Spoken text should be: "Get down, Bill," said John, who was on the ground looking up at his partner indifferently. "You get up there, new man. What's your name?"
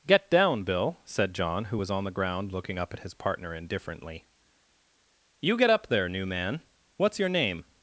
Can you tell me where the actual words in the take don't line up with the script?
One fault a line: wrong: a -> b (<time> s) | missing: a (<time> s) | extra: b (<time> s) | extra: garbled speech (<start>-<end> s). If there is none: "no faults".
no faults